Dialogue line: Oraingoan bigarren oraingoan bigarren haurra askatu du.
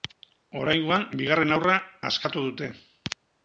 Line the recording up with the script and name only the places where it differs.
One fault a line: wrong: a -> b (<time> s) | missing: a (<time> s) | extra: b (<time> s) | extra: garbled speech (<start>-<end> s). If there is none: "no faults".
missing: oraingoan bigarren (1.6 s)
wrong: du -> dute (2.5 s)